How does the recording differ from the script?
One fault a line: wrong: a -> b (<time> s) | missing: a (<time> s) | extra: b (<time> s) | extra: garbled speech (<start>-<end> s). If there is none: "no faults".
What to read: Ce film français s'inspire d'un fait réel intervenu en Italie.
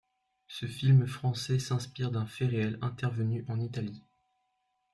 no faults